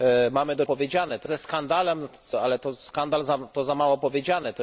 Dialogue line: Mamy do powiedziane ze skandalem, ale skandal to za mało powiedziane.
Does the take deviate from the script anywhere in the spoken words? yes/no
no